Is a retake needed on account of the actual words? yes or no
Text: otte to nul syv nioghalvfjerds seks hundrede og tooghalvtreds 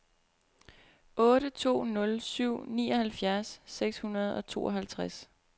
no